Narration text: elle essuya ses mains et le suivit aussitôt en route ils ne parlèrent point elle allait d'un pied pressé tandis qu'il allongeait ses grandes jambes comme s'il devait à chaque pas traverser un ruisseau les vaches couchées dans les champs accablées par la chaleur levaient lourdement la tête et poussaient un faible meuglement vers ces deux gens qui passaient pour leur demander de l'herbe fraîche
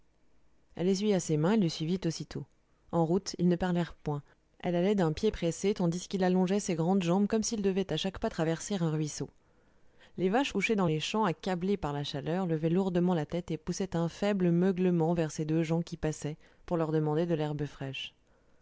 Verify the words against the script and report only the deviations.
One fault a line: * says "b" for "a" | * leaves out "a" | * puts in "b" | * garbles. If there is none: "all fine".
all fine